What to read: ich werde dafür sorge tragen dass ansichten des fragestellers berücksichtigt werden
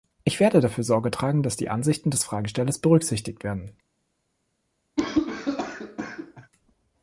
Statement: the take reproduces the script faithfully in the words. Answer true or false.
false